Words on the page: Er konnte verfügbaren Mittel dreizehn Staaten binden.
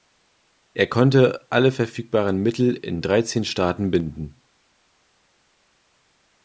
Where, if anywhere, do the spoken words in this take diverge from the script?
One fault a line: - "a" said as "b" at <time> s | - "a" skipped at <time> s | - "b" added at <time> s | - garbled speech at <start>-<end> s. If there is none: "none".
- "alle" added at 1.5 s
- "in" added at 2.8 s